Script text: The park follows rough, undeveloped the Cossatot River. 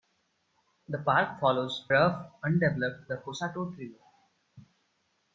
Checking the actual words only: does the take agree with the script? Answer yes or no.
yes